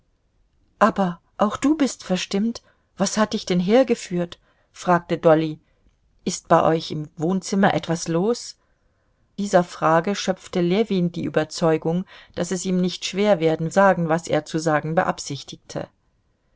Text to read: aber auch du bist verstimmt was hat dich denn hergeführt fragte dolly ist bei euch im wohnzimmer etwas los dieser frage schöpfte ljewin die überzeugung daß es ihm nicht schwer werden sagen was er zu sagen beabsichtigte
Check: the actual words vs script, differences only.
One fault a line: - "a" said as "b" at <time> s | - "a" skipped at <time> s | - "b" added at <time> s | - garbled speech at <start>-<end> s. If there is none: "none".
none